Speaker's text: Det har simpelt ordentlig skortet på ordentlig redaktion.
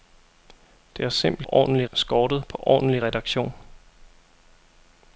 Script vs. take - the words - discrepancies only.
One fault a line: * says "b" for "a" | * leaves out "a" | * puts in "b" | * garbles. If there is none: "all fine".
all fine